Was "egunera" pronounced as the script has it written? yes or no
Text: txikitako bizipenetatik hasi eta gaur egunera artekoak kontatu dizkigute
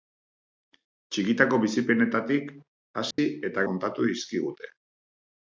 no